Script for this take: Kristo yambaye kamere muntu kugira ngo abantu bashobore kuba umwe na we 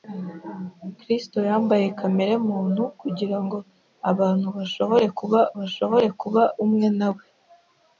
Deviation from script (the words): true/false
true